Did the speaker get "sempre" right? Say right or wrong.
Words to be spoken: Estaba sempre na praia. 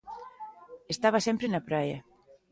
right